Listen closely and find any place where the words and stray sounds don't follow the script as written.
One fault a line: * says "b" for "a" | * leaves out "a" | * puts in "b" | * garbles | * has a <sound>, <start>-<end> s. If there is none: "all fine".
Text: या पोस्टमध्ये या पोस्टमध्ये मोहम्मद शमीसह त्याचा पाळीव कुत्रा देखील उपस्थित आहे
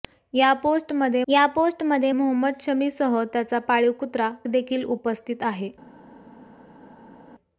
all fine